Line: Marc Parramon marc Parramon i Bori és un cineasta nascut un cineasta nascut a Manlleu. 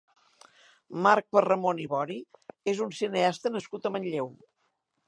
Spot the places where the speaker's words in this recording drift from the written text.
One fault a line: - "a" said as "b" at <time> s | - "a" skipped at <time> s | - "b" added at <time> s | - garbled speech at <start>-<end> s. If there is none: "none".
- "marc Parramon" skipped at 1.8 s
- "un cineasta nascut" skipped at 3.9 s